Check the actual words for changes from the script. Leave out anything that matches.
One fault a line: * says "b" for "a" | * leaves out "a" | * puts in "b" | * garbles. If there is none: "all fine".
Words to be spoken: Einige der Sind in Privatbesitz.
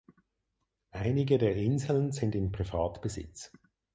* puts in "Inseln"